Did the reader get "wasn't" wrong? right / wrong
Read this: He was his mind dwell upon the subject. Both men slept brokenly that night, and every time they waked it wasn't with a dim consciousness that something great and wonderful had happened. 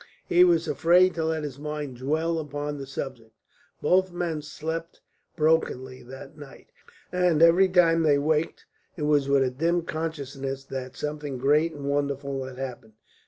wrong